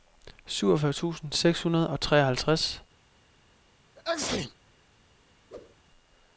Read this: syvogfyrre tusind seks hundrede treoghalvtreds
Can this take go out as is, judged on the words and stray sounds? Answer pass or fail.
fail